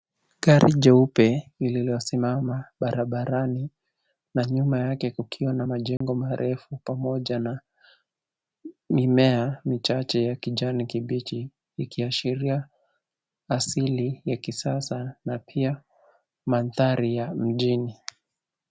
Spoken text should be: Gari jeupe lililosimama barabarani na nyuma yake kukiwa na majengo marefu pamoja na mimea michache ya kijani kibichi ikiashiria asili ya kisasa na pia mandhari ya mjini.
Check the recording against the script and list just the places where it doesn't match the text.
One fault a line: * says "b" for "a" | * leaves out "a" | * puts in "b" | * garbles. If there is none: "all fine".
all fine